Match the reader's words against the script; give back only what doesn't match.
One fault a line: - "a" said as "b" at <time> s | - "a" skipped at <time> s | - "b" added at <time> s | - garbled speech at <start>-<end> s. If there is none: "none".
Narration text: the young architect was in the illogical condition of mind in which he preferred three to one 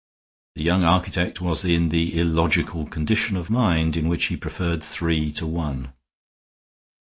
none